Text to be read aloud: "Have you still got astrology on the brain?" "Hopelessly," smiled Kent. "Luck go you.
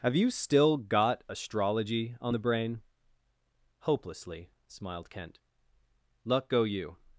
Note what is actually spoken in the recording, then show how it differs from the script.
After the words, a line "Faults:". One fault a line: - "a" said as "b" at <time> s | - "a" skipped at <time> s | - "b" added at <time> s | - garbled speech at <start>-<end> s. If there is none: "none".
"Have you still got astrology on the brain?" "Hopelessly," smiled Kent. "Luck go you.
Faults:
none